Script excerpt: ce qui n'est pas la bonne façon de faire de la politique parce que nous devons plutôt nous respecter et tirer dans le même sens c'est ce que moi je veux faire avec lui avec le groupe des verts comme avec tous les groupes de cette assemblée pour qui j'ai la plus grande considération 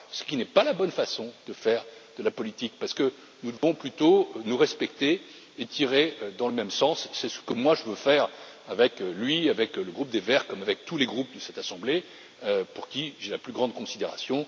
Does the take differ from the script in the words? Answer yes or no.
no